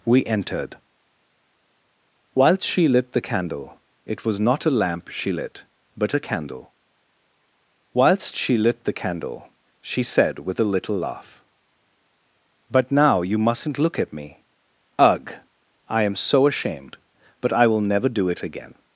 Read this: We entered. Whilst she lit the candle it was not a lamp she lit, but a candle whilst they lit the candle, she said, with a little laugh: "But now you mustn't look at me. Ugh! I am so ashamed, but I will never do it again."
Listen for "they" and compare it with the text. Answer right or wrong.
wrong